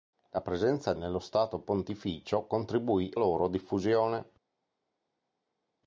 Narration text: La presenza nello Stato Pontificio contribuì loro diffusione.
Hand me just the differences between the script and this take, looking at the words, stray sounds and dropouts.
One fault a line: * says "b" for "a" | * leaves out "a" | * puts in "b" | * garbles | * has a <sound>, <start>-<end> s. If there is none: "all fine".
all fine